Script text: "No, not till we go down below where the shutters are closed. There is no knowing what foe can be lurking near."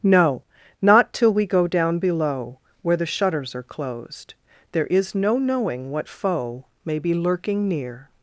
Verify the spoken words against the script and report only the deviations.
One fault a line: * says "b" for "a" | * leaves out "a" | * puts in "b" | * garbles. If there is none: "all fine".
* says "may" for "can"